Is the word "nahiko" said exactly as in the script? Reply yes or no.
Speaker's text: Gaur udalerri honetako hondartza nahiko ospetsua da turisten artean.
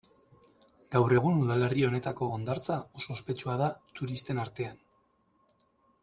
no